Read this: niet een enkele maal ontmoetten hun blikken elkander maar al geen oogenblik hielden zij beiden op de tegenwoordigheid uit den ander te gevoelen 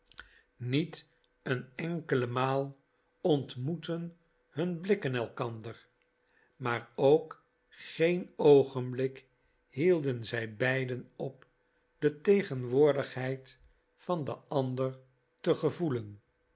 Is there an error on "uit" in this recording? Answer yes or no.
yes